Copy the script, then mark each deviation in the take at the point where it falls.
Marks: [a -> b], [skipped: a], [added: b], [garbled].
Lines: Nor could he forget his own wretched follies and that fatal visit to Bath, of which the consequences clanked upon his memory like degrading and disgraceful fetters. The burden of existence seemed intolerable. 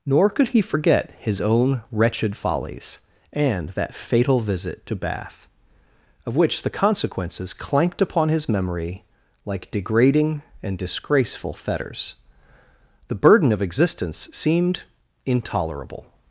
Nor could he forget his own wretched follies and that fatal visit to Bath, of which the consequences clanked upon his memory like degrading and disgraceful fetters. The burden of existence seemed intolerable.